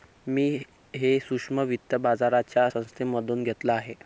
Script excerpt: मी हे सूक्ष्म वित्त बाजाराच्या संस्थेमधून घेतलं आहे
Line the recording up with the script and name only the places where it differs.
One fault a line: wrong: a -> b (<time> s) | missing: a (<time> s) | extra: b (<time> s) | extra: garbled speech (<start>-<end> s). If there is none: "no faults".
no faults